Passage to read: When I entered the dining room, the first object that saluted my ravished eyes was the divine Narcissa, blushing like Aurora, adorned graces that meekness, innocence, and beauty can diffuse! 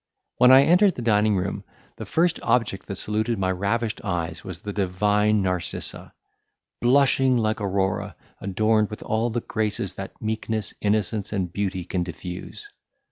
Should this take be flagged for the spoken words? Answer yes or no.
yes